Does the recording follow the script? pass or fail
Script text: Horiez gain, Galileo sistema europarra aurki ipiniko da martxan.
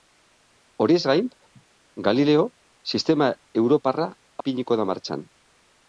fail